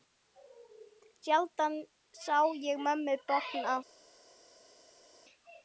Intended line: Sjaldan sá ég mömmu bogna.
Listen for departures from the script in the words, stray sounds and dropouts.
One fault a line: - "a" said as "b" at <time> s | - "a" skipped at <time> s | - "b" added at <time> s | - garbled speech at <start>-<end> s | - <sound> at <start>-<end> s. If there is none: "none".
none